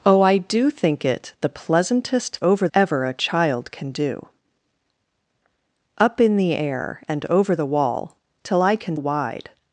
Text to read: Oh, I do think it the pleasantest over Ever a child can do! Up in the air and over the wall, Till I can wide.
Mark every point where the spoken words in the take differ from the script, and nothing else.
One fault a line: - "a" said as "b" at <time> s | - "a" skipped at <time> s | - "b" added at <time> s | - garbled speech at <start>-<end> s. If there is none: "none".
none